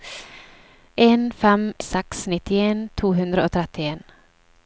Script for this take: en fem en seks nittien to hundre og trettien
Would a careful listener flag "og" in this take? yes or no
no